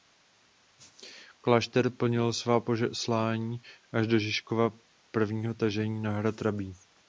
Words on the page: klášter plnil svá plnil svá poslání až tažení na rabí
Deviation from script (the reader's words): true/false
true